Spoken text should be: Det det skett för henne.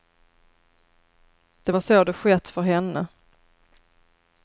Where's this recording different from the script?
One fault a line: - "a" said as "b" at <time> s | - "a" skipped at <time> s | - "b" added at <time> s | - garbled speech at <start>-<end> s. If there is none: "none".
- "var så" added at 1.7 s